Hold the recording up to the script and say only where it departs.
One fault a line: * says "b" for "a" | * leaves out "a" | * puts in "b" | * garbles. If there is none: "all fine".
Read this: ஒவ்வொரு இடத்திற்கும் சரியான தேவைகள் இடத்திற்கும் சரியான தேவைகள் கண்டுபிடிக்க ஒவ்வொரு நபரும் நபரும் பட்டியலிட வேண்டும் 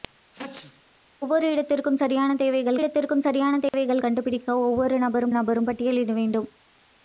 all fine